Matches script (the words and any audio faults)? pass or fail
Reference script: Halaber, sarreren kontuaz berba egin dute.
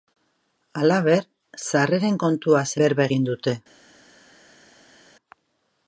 pass